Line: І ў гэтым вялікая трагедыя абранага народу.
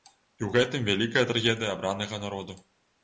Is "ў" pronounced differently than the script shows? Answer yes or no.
no